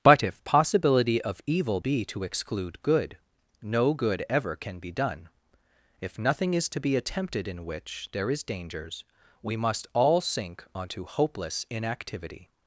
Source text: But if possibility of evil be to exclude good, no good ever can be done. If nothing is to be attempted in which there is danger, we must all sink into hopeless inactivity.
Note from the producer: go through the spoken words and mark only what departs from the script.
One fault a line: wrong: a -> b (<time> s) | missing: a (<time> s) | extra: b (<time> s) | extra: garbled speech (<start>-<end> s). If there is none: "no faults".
wrong: danger -> dangers (8.4 s)
wrong: into -> onto (10.7 s)